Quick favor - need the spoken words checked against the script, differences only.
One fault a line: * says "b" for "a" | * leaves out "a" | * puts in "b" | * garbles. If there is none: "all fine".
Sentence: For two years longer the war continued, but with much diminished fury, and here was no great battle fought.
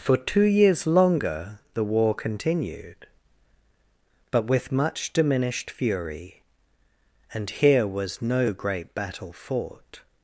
all fine